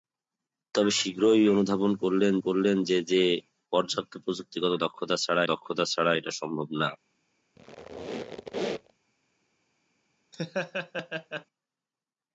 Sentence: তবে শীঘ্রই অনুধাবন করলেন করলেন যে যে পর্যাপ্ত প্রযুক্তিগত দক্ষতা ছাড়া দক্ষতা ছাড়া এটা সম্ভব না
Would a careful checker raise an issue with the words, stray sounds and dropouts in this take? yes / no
yes